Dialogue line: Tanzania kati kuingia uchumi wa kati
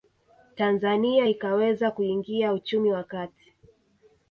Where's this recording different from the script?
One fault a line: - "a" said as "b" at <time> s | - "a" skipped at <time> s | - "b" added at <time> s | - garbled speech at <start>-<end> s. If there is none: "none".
- "kati" said as "ikaweza" at 1.3 s